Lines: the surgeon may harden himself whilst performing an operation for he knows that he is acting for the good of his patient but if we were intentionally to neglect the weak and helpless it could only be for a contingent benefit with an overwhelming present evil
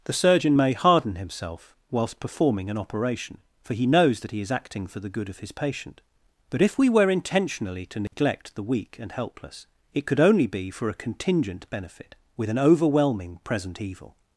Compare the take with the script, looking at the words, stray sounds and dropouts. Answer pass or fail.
fail